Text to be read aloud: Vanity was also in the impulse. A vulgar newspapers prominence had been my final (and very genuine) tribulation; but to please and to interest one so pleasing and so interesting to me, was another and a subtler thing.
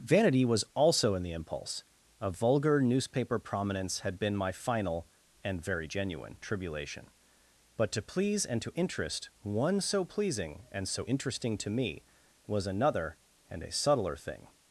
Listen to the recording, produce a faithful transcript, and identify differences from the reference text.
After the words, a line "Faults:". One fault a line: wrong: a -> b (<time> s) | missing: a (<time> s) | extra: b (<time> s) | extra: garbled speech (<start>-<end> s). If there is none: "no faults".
Vanity was also in the impulse. A vulgar newspaper prominence had been my final (and very genuine) tribulation; but to please and to interest one so pleasing and so interesting to me, was another and a subtler thing.
Faults:
wrong: newspapers -> newspaper (2.8 s)